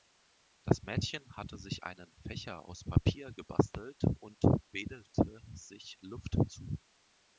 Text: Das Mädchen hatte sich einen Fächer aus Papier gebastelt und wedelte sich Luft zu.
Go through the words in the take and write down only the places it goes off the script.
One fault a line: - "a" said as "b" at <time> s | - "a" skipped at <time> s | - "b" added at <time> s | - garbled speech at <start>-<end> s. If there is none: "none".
none